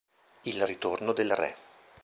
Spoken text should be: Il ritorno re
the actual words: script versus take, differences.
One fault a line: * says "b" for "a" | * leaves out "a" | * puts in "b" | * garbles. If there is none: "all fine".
* puts in "del"